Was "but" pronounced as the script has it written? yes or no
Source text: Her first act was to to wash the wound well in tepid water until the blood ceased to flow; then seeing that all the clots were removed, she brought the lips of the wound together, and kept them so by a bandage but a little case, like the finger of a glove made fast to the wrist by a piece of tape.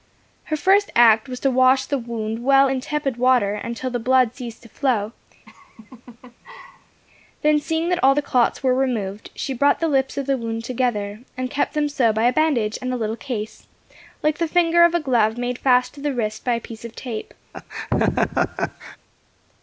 no